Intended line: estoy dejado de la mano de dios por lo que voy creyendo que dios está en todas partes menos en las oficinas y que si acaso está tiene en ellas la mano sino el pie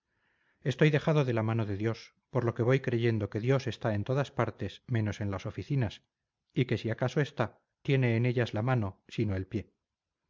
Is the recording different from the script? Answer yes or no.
no